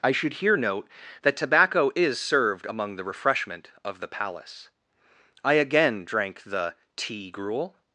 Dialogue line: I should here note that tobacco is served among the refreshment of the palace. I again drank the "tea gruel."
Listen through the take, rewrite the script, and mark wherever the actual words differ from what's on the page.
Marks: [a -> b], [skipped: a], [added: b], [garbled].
I should here note that tobacco is served among the refreshment of the palace. I again drank the "tea gruel."